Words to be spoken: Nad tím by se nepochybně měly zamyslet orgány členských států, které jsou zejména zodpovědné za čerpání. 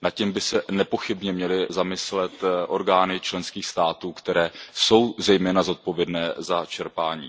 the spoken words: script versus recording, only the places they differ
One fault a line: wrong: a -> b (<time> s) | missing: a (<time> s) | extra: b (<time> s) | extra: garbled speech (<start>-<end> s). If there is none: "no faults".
no faults